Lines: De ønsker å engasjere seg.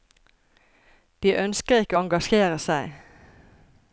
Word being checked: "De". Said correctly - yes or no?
yes